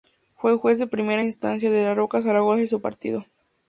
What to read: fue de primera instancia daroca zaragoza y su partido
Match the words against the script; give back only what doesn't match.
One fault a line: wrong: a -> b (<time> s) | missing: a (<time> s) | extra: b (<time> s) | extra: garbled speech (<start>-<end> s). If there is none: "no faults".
extra: juez (0.6 s)
extra: de (1.7 s)